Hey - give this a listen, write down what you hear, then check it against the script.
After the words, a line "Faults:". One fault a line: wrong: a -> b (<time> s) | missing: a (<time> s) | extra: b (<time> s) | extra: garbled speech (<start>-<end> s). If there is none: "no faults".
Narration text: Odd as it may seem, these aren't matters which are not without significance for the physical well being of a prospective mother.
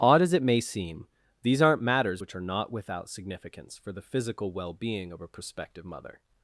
Odd as it may seem, these aren't matters which are not without significance for the physical well being of a prospective mother.
Faults:
no faults